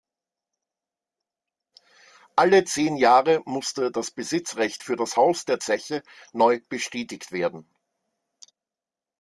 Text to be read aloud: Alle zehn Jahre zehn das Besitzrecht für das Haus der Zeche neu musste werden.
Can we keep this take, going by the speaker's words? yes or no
no